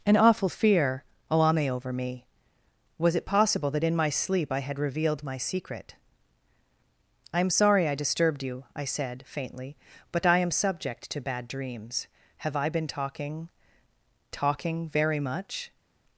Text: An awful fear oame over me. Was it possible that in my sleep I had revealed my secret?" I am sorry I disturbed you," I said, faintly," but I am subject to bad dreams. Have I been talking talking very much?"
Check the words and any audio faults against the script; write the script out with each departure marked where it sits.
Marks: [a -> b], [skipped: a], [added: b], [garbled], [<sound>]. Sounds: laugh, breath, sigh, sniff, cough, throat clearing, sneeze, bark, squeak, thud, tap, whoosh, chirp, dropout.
An awful fear oame over me. Was it possible that in my sleep I had revealed my secret?" I am sorry I disturbed you," I said, faintly," but I am subject to bad dreams. Have I been talking talking very much?"